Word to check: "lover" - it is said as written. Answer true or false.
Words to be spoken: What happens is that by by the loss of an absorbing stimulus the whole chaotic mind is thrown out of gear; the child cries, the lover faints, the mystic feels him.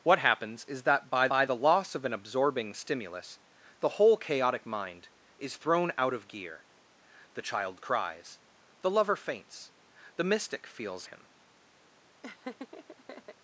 true